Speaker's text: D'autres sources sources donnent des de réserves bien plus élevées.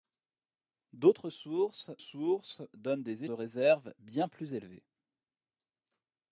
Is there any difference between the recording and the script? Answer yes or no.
no